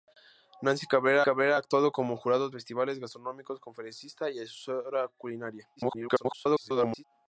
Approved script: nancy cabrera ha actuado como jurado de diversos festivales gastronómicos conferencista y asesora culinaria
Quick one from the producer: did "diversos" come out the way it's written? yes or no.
no